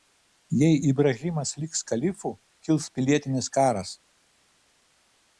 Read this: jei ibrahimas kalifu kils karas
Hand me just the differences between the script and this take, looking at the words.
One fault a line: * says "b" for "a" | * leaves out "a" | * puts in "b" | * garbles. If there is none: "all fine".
* puts in "liks"
* puts in "pilietinis"